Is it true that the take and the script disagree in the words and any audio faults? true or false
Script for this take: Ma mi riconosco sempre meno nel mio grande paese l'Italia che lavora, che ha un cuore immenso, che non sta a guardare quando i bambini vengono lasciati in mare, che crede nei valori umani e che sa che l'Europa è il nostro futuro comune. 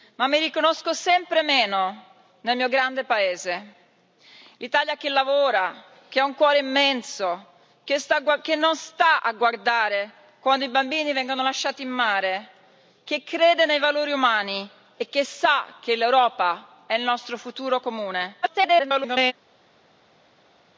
true